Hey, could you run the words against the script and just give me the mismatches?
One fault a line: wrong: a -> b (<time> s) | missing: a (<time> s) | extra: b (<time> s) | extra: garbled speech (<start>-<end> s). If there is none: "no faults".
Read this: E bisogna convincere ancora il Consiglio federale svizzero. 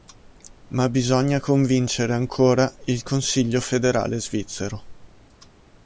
wrong: E -> Ma (0.7 s)